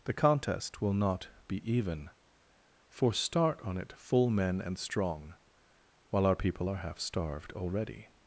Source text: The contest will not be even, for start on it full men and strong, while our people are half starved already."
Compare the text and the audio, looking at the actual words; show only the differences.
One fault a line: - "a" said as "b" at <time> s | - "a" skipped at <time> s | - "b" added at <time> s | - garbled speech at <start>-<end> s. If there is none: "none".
none